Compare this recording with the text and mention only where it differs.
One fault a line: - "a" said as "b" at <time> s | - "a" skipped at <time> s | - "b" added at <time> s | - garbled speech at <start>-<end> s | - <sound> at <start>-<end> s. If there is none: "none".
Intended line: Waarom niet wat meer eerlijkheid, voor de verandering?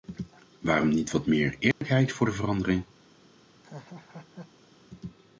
- dropout at 1.7-1.8 s
- laugh at 3.6-4.7 s